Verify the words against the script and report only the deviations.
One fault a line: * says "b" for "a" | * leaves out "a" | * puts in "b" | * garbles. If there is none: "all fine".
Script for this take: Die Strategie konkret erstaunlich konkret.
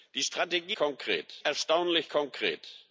all fine